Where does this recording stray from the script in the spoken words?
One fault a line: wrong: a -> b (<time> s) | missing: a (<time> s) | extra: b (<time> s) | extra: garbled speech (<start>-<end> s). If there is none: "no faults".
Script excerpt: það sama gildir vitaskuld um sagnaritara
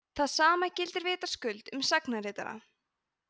no faults